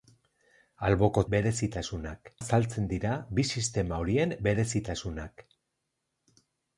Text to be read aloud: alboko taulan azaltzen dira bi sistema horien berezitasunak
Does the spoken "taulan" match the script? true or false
false